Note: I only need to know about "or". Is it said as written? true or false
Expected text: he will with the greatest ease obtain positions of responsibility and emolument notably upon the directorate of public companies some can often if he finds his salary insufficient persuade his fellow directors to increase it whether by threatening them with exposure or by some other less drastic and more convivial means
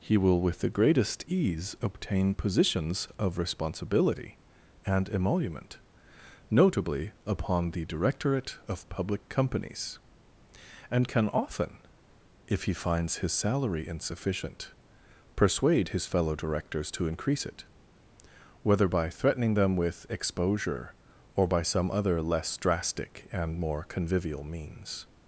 true